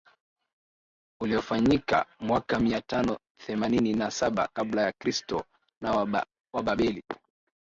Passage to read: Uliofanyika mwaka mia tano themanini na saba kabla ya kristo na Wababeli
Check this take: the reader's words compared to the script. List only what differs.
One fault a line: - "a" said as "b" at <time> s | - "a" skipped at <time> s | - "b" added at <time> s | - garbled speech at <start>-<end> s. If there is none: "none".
none